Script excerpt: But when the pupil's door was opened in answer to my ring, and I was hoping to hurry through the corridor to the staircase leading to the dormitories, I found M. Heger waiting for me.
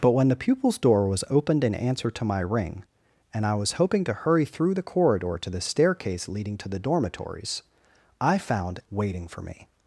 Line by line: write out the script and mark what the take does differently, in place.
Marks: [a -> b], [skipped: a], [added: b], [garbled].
But when the pupil's door was opened in answer to my ring, and I was hoping to hurry through the corridor to the staircase leading to the dormitories, I found [skipped: M. Heger] waiting for me.